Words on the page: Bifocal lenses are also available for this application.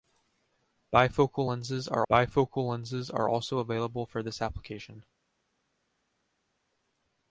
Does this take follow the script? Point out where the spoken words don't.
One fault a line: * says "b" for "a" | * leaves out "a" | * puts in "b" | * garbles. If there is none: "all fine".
* puts in "bifocal lenses are"